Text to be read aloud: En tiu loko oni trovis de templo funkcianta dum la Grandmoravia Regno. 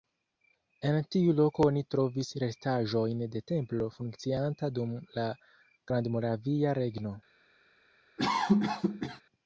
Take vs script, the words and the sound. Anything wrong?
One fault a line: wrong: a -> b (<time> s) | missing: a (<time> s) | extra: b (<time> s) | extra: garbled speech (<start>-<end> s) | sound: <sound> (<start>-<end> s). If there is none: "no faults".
extra: restaĵojn (2.4 s)
sound: cough (8.2-9.2 s)